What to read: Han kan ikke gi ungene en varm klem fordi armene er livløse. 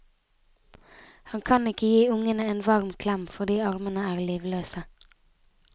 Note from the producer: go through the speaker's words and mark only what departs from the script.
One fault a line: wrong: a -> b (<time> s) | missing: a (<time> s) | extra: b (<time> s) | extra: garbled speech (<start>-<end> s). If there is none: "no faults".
no faults